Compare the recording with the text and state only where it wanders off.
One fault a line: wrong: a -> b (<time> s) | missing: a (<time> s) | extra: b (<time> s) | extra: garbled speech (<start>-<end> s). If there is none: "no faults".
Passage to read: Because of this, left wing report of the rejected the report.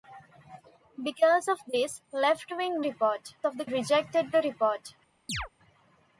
no faults